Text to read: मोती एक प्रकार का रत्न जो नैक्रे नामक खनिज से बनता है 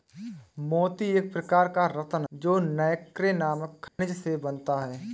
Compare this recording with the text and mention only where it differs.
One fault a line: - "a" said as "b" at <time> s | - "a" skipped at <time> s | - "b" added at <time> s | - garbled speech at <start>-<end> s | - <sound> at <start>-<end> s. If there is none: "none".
- dropout at 3.9-4.0 s